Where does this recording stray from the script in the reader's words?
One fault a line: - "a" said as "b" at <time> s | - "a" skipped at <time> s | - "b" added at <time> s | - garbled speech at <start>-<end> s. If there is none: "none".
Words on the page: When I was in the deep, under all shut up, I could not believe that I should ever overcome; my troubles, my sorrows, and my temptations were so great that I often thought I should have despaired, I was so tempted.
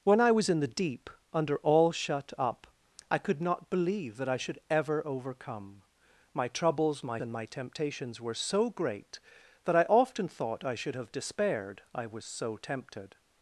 - "sorrows" skipped at 7.2 s